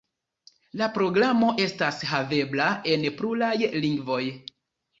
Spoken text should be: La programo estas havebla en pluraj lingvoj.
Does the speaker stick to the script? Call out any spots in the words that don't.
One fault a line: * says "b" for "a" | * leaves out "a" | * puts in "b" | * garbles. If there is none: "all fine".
all fine